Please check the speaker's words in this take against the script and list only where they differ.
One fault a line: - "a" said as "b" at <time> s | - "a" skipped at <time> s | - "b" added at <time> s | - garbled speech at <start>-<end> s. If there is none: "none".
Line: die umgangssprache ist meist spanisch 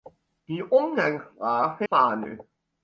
- "ist meist" skipped at 1.9 s